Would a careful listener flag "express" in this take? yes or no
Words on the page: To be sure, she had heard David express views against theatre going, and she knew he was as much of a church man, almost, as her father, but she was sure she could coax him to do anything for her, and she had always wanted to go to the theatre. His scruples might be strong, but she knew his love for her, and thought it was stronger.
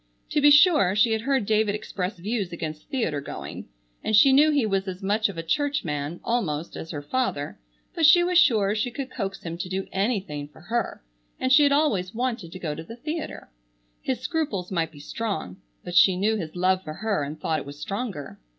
no